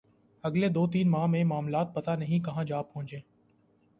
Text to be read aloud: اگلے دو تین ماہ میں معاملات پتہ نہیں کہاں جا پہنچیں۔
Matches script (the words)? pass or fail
pass